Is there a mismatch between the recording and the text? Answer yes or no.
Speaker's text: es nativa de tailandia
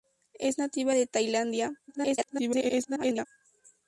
yes